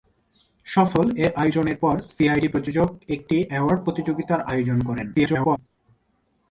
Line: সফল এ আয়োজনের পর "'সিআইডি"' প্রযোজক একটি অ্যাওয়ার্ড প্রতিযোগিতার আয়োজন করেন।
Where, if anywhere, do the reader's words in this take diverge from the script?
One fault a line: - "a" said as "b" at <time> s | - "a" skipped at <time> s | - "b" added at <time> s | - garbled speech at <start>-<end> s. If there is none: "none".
- garbled speech at 5.1-5.6 s